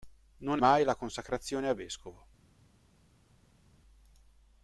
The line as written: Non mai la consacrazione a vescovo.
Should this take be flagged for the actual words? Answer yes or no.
no